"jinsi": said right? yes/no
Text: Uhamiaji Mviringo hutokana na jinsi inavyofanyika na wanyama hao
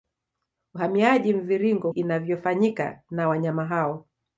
no